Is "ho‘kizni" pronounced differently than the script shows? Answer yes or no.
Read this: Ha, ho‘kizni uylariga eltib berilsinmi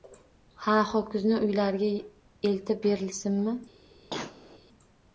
no